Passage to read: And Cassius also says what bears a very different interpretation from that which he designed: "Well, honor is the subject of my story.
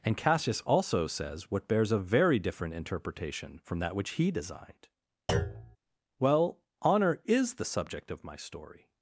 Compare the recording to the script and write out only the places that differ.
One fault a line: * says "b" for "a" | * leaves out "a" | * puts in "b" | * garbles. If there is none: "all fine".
all fine